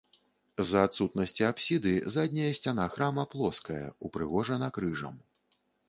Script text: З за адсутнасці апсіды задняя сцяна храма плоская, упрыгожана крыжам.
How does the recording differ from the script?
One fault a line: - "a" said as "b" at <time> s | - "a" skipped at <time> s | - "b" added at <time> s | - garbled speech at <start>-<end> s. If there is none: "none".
none